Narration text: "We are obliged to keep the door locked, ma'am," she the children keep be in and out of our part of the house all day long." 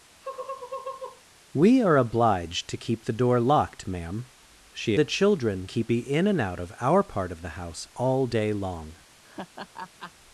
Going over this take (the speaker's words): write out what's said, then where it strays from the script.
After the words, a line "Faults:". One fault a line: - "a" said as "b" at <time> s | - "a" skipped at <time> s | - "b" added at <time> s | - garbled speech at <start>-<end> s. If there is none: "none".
"We are obliged to keep the door locked, ma'am," she the children keep be in and out of our part of the house all day long."
Faults:
none